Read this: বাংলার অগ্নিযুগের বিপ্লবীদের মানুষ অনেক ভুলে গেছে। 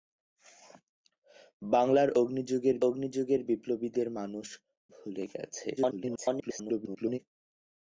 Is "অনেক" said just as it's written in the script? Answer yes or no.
no